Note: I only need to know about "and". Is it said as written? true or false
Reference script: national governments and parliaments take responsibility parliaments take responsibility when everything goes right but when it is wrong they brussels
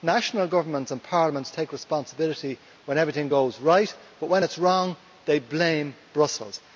true